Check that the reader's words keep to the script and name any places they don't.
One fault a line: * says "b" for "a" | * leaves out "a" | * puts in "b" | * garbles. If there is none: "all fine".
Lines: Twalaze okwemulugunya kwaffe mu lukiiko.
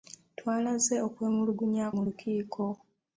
* leaves out "kwaffe"